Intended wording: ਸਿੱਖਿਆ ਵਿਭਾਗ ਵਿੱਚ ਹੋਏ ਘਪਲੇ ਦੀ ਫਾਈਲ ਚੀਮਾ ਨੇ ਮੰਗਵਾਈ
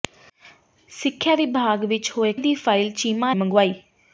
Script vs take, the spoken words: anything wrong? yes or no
yes